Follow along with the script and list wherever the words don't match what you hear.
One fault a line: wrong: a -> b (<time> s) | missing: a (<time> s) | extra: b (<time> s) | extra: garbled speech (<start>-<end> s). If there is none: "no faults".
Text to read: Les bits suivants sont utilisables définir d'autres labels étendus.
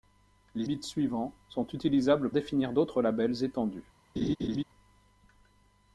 no faults